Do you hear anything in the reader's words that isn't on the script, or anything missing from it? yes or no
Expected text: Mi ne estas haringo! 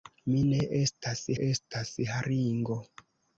yes